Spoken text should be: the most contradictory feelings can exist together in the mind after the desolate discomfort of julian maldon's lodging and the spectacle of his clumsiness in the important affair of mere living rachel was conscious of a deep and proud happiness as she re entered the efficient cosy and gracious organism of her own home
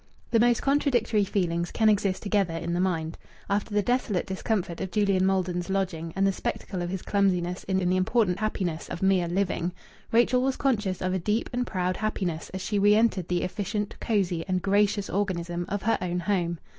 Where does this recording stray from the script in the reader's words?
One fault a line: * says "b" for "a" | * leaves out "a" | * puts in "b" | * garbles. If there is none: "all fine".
* puts in "in"
* says "happiness" for "affair"